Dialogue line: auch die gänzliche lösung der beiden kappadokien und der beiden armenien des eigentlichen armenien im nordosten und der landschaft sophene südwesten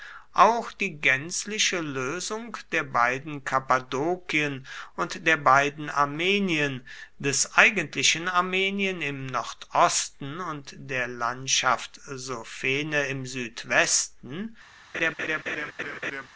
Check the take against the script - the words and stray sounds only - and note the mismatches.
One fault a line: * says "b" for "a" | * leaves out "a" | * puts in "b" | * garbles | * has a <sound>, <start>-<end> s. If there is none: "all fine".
* puts in "im"
* has a laugh, 14.9-16.3 s